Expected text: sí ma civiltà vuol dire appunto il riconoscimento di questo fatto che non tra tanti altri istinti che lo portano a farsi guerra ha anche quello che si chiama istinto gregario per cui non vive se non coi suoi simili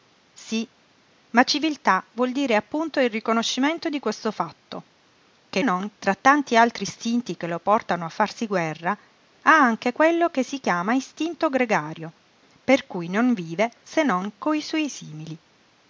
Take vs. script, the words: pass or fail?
pass